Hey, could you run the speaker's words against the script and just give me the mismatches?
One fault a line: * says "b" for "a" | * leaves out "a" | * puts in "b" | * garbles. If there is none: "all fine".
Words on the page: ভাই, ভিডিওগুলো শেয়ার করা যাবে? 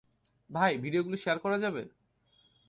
all fine